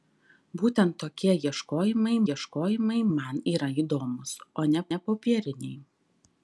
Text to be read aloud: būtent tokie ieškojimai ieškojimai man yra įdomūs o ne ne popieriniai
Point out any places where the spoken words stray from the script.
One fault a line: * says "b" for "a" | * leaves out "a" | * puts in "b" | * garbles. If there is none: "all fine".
all fine